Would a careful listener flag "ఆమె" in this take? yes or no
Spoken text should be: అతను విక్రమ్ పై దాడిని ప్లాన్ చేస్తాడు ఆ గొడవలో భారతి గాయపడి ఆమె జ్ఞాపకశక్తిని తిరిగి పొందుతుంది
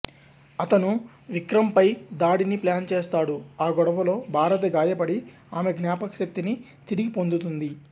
no